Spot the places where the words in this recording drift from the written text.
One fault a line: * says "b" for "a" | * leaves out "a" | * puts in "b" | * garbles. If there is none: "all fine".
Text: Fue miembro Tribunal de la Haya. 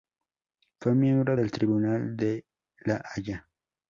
* puts in "del"